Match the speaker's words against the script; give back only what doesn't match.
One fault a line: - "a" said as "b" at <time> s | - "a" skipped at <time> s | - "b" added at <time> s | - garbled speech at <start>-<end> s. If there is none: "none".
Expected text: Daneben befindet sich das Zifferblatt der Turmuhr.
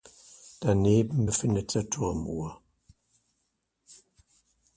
- "sich das Zifferblatt" skipped at 1.7 s